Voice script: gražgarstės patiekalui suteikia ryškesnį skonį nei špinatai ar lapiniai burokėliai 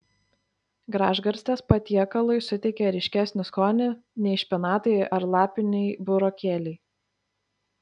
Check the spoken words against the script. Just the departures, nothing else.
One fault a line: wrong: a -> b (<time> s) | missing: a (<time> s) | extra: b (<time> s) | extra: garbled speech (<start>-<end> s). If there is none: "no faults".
no faults